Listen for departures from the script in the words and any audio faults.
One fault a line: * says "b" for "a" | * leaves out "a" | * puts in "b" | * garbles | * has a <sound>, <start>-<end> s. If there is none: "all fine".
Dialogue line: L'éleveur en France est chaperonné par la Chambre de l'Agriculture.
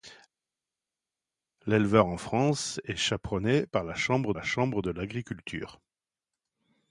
* puts in "la Chambre"